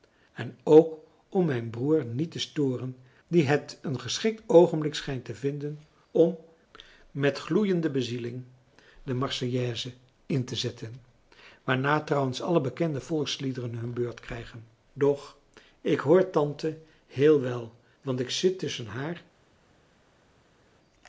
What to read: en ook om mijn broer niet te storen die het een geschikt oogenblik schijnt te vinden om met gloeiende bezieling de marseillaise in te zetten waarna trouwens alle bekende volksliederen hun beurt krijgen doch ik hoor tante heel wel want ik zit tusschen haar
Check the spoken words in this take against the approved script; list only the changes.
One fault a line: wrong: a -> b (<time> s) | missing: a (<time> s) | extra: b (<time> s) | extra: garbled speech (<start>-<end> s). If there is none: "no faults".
no faults